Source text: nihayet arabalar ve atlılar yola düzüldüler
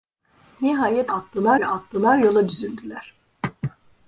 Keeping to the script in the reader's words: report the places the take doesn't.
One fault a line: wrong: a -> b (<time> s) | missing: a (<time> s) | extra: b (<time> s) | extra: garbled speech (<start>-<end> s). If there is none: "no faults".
wrong: arabalar -> atlılar (1.1 s)